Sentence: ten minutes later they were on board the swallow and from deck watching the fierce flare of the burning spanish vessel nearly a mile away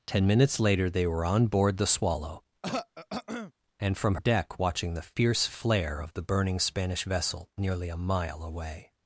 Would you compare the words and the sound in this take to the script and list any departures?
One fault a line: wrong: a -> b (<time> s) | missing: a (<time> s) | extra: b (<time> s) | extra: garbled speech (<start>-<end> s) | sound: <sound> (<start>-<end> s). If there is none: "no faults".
sound: throat clearing (2.6-3.5 s)